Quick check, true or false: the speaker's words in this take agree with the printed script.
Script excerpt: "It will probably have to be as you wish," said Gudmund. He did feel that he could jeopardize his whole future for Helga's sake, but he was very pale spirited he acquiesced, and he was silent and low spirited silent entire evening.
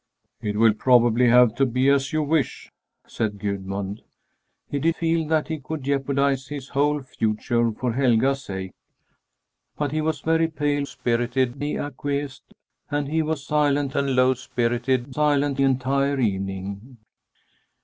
true